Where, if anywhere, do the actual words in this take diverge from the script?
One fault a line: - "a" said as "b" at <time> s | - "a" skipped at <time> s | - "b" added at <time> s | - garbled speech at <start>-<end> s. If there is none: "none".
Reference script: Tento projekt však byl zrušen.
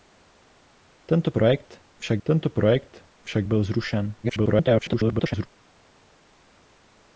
- "tento projekt však" added at 2.2 s
- garbled speech at 4.2-5.5 s